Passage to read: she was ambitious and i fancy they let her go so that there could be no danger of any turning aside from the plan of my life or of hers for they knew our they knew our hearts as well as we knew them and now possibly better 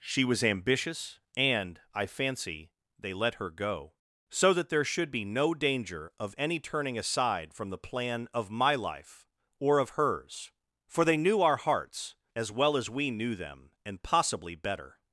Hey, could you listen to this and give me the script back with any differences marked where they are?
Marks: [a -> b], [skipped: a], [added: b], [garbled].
she was ambitious and i fancy they let her go so that there [could -> should] be no danger of any turning aside from the plan of my life or of hers for they knew our [skipped: they knew our] hearts as well as we knew them and [skipped: now] possibly better